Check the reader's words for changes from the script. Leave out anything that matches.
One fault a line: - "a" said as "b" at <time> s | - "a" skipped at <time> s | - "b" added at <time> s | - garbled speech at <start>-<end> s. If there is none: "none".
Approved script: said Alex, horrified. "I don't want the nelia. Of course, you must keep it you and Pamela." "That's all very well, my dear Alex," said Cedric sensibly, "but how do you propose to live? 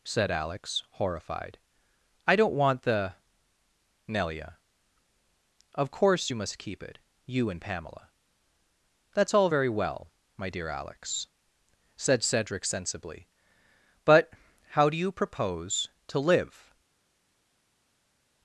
none